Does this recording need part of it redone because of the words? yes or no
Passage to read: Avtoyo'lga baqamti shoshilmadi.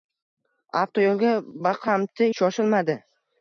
no